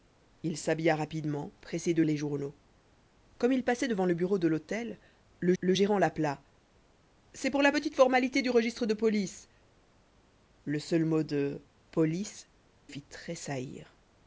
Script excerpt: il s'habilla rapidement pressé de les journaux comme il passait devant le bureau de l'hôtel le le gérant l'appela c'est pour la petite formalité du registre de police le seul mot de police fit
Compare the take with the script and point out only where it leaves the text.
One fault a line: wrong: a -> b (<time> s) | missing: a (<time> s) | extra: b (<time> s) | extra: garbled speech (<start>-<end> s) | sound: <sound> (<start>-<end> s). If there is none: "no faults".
no faults